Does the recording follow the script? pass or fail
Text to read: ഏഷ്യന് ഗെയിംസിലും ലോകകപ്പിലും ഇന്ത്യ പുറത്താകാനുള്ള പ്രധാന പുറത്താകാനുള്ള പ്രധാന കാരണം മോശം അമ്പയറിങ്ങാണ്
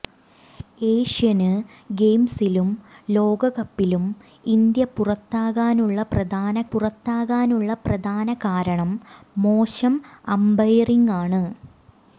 pass